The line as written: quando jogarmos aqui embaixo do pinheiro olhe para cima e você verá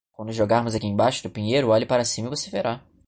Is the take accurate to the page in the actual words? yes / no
yes